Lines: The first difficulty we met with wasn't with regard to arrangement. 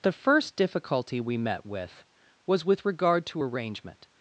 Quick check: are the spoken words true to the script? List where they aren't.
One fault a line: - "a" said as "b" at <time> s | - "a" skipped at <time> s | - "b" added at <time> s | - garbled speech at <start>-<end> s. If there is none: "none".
- "wasn't" said as "was" at 2.5 s